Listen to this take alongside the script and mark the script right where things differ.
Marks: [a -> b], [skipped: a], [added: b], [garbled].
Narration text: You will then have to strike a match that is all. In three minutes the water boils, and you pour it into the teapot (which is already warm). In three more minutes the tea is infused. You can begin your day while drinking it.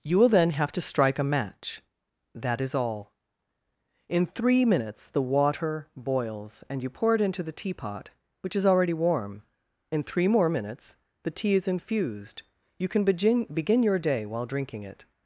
You will then have to strike a match that is all. In three minutes the water boils, and you pour it into the teapot (which is already warm). In three more minutes the tea is infused. You can begin [added: begin] your day while drinking it.